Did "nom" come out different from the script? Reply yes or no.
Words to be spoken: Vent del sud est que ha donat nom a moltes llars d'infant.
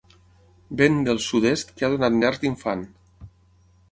yes